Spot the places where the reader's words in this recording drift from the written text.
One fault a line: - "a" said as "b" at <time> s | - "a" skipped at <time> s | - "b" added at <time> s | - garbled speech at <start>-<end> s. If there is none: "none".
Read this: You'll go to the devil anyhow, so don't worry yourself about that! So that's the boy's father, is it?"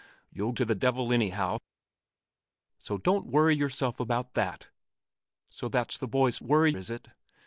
- "go" skipped at 0.5 s
- "father" said as "worry" at 6.4 s